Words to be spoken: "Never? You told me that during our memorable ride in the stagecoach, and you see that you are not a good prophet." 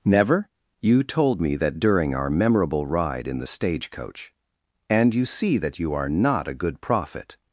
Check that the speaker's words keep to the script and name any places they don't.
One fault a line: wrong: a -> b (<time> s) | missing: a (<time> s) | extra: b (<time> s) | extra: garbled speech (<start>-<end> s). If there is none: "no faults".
no faults